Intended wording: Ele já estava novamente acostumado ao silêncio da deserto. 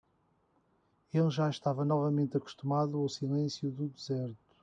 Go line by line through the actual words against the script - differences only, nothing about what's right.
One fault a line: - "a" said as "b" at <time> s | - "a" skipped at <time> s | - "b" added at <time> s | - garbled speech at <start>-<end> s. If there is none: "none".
- "da" said as "do" at 3.7 s